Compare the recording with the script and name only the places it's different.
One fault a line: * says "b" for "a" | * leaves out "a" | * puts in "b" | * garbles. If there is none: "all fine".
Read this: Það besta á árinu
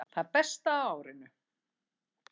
all fine